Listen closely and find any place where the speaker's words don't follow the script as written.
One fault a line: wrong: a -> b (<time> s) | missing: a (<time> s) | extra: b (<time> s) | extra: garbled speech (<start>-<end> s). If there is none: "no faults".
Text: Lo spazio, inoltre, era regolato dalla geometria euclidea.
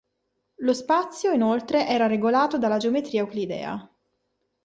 no faults